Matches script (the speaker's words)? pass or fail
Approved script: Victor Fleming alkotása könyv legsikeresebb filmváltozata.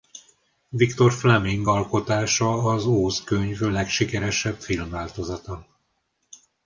fail